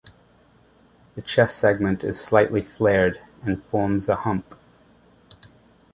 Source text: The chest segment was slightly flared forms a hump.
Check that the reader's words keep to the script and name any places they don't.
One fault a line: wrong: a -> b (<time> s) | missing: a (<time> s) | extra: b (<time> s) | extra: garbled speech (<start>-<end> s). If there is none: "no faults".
wrong: was -> is (2.0 s)
extra: and (3.4 s)